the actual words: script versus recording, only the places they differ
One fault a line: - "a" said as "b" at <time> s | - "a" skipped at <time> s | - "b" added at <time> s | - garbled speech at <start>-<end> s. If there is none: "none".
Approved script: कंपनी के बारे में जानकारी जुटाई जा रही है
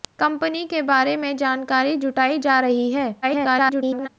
- garbled speech at 3.2-4.1 s